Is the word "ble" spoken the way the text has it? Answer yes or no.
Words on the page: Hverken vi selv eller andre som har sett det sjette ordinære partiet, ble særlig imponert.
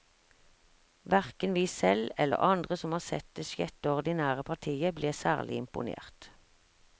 yes